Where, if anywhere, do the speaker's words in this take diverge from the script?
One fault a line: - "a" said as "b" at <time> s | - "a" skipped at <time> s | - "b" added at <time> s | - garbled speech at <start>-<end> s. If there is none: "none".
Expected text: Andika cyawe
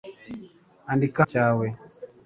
none